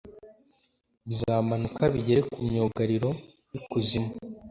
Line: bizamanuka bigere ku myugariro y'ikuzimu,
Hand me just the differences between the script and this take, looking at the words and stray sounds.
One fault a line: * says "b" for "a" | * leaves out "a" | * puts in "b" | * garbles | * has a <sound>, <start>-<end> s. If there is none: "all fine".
all fine